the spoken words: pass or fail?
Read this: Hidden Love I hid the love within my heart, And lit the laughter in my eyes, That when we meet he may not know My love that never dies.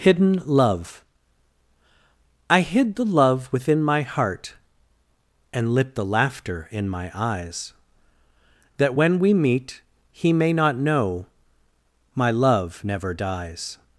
fail